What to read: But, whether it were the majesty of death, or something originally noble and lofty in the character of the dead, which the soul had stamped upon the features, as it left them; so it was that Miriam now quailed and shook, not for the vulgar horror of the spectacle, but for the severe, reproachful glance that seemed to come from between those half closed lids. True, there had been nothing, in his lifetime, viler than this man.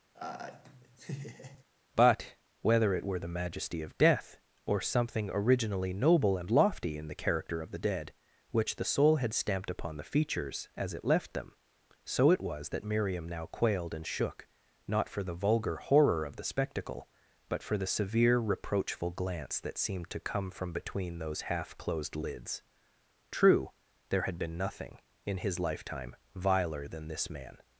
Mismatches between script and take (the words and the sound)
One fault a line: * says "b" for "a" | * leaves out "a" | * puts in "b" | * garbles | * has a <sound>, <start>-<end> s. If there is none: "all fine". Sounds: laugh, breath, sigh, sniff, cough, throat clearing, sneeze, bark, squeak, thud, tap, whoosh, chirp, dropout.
* has a laugh, 0.1-1.6 s